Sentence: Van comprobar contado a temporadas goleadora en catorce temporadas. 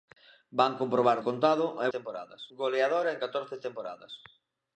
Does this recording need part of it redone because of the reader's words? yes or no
no